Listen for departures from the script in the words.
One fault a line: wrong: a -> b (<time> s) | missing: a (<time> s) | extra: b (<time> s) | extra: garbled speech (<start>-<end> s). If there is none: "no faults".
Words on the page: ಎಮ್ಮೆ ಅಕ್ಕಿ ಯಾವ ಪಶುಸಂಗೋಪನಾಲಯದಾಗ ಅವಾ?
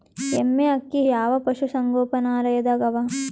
no faults